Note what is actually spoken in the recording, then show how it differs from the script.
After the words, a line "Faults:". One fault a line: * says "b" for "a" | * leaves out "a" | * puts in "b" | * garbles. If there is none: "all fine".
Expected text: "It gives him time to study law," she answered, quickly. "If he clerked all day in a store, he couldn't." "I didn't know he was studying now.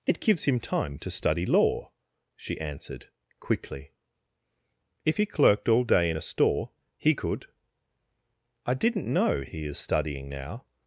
"It gives him time to study law," she answered, quickly. "If he clerked all day in a store, he could." "I didn't know he is studying now.
Faults:
* says "could" for "couldn't"
* says "is" for "was"